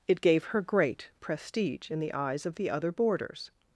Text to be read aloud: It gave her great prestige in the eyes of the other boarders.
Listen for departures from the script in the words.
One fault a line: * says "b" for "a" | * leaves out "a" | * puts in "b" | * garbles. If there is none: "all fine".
all fine